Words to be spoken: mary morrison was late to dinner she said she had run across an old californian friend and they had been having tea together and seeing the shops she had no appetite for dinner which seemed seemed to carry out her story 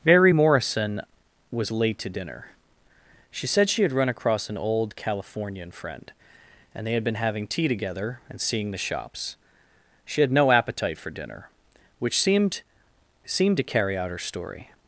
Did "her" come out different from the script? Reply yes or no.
no